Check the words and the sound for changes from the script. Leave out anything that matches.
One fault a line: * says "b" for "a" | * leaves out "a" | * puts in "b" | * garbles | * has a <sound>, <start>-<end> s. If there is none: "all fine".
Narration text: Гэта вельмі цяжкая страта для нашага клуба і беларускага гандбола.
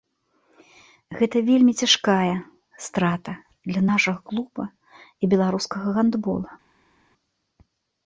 all fine